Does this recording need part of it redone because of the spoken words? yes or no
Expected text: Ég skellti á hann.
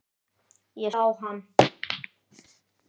yes